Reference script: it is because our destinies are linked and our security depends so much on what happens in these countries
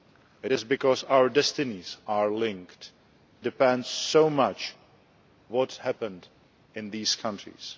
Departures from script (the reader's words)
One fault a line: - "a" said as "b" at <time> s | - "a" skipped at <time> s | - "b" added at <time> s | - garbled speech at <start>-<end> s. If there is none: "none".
- "and our security" skipped at 2.9 s
- "on" skipped at 4.7 s